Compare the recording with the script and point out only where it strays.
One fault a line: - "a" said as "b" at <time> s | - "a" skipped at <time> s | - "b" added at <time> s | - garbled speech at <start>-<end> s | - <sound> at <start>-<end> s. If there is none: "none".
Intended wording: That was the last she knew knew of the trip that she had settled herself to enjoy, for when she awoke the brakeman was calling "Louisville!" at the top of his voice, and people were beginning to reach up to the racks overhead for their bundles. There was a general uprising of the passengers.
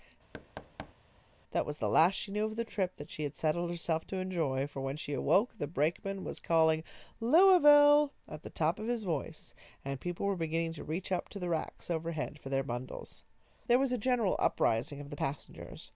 - thud at 0.3-0.9 s
- "knew" skipped at 2.4 s